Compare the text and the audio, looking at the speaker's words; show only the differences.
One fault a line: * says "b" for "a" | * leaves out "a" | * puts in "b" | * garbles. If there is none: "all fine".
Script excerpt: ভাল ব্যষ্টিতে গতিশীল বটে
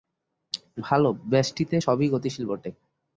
* puts in "সবই"